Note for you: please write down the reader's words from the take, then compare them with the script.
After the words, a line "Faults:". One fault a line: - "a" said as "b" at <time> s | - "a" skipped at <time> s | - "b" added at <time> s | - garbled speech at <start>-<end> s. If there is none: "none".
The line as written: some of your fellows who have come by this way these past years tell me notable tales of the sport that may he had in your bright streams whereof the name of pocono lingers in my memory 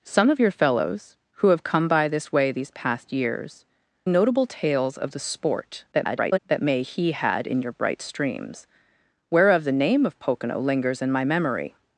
some of your fellows who have come by this way these past years notable tales of the sport [garbled] that may he had in your bright streams whereof the name of pocono lingers in my memory
Faults:
- "tell me" skipped at 3.6 s
- garbled speech at 5.9-6.4 s